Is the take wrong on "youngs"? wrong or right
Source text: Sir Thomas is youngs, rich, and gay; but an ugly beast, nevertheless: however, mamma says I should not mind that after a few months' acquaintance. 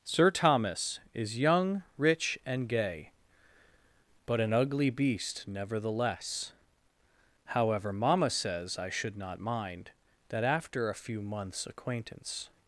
wrong